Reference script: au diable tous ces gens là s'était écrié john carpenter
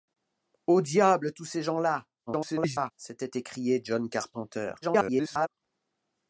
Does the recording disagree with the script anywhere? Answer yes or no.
yes